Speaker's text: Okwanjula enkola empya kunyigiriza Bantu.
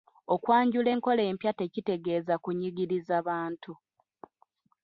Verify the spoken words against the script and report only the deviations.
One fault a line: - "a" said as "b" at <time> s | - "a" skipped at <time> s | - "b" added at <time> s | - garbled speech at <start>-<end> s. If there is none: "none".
- "tekitegeeza" added at 1.6 s